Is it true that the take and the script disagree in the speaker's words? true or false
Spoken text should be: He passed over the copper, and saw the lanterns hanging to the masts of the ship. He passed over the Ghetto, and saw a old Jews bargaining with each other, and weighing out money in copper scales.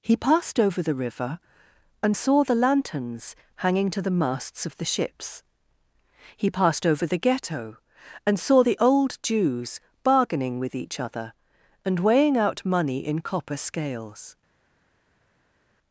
true